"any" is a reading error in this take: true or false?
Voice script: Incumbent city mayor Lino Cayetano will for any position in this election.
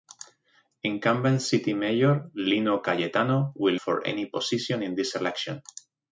false